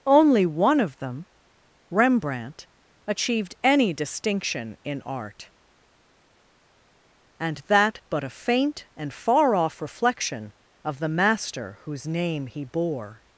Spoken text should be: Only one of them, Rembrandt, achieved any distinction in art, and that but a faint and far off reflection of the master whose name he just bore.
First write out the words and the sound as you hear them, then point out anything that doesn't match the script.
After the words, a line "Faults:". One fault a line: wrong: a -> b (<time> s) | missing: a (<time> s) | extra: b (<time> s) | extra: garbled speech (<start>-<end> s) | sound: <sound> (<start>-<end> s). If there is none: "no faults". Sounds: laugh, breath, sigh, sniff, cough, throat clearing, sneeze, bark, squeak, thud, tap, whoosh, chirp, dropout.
Only one of them, Rembrandt, achieved any distinction in art, and that but a faint and far off reflection of the master whose name he bore.
Faults:
missing: just (12.6 s)